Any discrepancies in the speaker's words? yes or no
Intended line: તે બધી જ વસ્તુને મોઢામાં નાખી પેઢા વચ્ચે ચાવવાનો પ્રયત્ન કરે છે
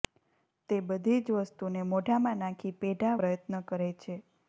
yes